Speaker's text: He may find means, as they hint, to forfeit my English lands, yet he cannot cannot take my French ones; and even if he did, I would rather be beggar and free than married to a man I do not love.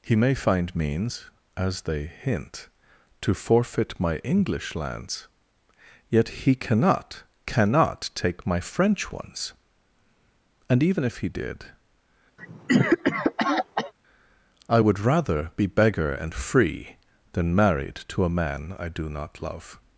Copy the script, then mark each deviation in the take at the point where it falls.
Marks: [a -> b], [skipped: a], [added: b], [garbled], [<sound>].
He may find means, as they hint, to forfeit my English lands, yet he cannot cannot take my French ones; and even if he did, [cough] I would rather be beggar and free than married to a man I do not love.